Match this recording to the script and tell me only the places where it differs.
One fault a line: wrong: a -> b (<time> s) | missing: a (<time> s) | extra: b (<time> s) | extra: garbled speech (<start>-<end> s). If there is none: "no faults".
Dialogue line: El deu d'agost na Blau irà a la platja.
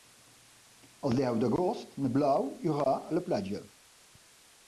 no faults